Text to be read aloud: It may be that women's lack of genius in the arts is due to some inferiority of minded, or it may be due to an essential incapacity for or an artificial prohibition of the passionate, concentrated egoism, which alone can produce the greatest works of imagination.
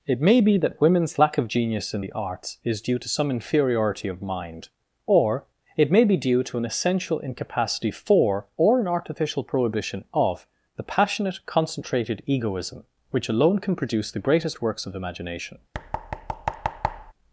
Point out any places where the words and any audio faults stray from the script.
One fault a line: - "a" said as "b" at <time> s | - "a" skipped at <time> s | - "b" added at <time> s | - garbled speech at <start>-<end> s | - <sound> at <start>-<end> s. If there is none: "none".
- "minded" said as "mind" at 4.2 s
- thud at 15.7-17.1 s